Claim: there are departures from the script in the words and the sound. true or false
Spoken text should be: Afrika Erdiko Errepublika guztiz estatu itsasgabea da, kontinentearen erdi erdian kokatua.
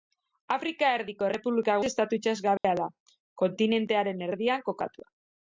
true